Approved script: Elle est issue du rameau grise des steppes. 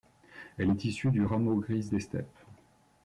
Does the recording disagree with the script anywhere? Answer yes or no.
no